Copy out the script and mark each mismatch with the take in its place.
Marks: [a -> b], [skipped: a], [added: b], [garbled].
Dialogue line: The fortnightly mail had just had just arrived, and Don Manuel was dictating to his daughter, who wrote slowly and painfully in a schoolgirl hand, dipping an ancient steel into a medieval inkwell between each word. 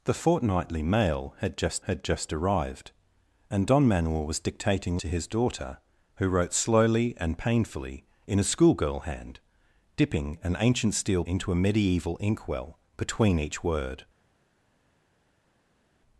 The fortnightly mail had just had just arrived, and Don Manuel was dictating to his daughter, who wrote slowly and painfully in a schoolgirl hand, dipping an ancient steel into a medieval inkwell between each word.